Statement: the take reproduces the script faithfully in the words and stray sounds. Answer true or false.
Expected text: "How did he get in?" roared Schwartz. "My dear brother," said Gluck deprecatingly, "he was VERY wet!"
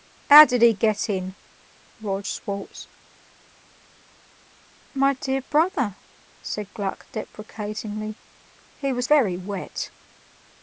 true